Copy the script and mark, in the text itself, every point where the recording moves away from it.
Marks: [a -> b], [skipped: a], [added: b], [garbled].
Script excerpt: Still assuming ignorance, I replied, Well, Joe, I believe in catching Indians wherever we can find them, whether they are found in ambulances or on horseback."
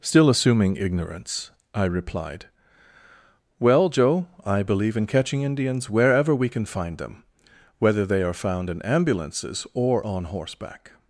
Still assuming ignorance, I replied, Well, Joe, I believe in catching Indians wherever we can find them, whether they are found in ambulances or on horseback."